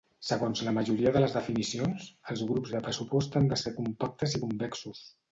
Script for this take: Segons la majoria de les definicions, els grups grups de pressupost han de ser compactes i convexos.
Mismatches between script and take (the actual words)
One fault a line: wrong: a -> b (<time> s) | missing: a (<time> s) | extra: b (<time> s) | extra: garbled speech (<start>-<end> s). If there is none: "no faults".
missing: grups (2.7 s)